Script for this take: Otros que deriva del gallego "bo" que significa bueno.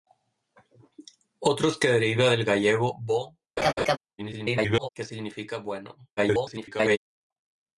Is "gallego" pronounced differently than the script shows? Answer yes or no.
no